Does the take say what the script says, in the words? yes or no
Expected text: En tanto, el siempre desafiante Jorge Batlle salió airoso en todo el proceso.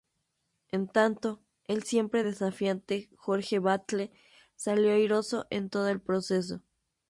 yes